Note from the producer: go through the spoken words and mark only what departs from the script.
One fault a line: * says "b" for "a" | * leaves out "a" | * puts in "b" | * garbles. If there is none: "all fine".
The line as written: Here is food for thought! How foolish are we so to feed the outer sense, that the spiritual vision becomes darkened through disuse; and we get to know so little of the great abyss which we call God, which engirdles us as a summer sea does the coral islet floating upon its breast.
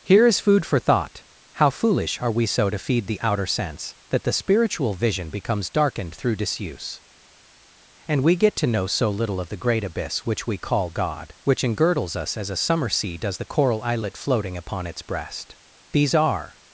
* puts in "These are"